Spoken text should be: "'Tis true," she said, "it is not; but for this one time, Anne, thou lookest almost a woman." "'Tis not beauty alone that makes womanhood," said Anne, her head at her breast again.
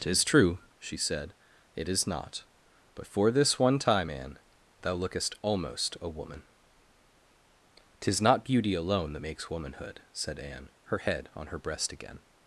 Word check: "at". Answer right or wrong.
wrong